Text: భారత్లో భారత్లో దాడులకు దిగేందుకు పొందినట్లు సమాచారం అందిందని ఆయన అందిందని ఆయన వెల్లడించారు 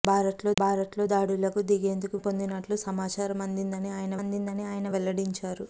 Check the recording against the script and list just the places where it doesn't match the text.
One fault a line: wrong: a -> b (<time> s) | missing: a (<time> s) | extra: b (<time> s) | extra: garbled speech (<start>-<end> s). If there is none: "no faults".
no faults